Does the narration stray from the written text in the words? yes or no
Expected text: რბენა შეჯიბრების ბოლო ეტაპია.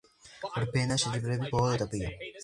no